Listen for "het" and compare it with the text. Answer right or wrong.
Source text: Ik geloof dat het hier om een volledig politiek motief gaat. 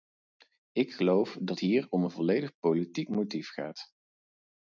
wrong